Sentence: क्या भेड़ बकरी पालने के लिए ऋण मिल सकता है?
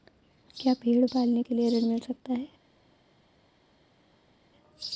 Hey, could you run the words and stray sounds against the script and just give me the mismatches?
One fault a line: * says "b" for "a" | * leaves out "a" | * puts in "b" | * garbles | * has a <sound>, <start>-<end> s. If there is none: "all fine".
* leaves out "बकरी"